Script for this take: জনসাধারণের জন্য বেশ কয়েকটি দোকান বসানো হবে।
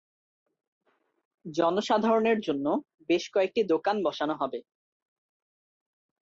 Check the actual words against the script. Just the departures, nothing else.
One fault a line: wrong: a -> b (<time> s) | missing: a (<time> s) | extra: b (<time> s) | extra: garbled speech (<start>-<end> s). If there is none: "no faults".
no faults